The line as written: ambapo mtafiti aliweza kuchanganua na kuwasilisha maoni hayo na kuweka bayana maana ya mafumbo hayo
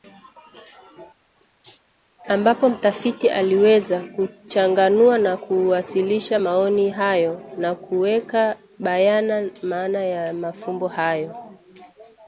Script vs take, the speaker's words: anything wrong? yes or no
no